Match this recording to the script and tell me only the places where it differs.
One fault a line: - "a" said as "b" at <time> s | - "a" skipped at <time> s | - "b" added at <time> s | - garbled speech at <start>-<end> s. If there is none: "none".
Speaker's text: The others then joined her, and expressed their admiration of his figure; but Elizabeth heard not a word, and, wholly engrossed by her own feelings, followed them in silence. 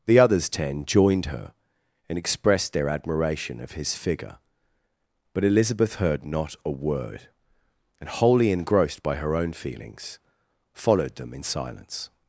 - "then" said as "ten" at 0.5 s